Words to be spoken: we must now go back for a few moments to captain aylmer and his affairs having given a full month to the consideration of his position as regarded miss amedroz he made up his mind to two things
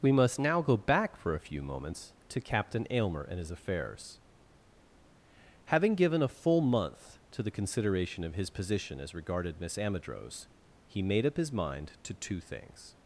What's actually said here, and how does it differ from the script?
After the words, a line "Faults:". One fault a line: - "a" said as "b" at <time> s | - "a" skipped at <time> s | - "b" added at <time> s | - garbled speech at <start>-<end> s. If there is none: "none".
we must now go back for a few moments to captain aylmer and his affairs having given a full month to the consideration of his position as regarded miss amedroz he made up his mind to two things
Faults:
none